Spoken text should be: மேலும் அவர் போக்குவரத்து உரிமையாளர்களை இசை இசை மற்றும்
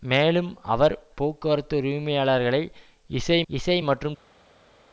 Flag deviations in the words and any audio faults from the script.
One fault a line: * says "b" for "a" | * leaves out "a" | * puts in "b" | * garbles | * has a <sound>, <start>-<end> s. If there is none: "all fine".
all fine